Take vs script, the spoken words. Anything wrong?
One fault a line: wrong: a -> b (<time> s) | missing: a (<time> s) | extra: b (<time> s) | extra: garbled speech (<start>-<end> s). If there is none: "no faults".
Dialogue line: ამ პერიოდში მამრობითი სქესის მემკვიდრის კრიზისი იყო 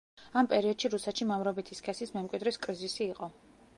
extra: რუსეთში (0.9 s)